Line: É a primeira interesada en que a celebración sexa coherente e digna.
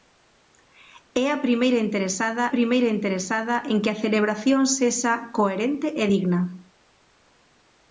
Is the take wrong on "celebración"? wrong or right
right